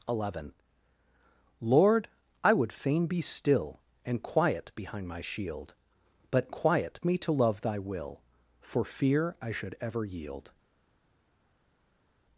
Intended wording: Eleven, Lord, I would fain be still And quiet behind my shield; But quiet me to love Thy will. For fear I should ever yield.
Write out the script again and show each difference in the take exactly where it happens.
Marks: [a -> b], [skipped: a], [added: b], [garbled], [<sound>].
Eleven, Lord, I would fain be still And quiet behind my shield; But quiet me to love Thy will. For fear I should ever yield.